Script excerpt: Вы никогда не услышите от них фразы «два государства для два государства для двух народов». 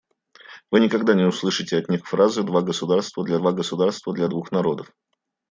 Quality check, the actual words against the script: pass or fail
pass